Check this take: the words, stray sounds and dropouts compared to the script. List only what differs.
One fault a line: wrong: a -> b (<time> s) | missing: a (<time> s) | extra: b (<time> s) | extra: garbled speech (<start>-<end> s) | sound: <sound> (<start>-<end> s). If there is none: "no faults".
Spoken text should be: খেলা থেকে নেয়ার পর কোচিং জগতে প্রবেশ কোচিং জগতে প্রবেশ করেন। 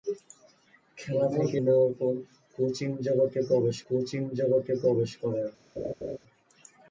sound: laugh (5.8-6.2 s)